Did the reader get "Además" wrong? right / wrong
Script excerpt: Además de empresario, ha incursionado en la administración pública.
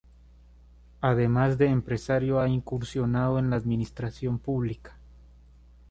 right